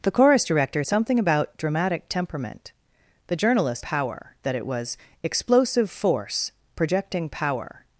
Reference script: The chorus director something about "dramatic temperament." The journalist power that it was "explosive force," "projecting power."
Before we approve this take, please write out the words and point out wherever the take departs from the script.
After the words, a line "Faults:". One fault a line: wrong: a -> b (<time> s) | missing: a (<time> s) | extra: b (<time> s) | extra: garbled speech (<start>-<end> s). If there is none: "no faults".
The chorus director something about "dramatic temperament." The journalist power that it was "explosive force," "projecting power."
Faults:
no faults